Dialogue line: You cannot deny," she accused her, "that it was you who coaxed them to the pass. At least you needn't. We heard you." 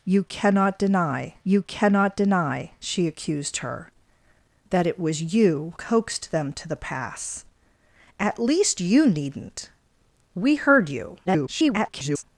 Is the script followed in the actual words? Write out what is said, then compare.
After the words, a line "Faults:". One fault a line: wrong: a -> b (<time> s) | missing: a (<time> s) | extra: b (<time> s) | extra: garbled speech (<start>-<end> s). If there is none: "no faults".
You cannot deny you cannot deny," she accused her, "that it was you coaxed them to the pass. At least you needn't. We heard you." [garbled]
Faults:
extra: you cannot deny (1.4 s)
missing: who (5.7 s)
extra: garbled speech (11.3-12.2 s)